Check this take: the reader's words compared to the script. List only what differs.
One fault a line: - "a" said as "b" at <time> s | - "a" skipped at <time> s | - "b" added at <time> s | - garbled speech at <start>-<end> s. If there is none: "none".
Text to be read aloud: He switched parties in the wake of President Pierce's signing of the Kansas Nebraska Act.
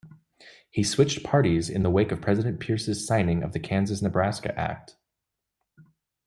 none